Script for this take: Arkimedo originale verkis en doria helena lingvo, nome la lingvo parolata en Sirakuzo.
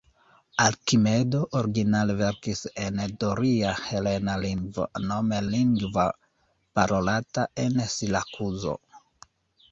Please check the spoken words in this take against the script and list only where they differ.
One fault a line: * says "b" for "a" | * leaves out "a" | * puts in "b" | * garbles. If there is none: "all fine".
* leaves out "la"